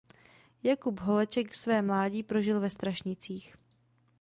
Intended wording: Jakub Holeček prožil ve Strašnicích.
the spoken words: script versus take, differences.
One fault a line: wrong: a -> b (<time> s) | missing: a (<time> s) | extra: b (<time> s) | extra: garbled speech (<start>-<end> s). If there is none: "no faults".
extra: své mládí (1.6 s)